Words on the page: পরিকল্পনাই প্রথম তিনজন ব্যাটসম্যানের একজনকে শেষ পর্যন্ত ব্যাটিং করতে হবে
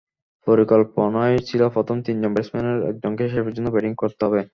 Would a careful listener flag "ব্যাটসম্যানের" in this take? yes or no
no